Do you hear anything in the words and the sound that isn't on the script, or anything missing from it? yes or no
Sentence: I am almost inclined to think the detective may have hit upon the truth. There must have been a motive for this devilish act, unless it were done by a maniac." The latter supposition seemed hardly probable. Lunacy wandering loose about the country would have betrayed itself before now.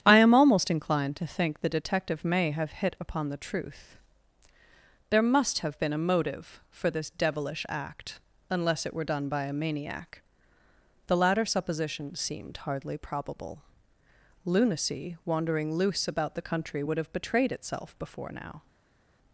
no